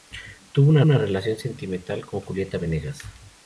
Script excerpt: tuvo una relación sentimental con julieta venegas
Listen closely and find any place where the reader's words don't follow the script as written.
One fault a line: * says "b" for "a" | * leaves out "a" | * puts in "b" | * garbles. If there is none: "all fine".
* puts in "una"